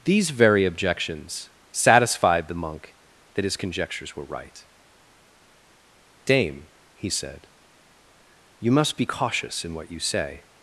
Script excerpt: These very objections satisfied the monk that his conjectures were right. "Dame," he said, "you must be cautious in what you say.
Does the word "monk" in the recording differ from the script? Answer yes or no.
no